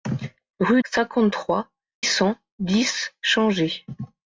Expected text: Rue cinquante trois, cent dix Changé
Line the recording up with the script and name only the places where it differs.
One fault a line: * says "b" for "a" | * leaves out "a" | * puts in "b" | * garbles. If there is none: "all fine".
all fine